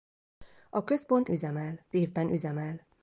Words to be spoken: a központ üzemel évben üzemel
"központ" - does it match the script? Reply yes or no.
yes